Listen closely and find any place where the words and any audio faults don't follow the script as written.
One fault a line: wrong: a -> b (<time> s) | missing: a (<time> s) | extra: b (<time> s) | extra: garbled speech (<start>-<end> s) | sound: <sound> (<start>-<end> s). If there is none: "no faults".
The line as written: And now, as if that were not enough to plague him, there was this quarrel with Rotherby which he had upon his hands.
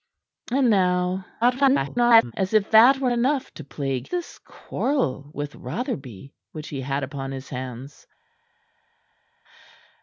extra: garbled speech (1.4-2.3 s)
missing: not (3.1 s)
missing: him there was (4.1 s)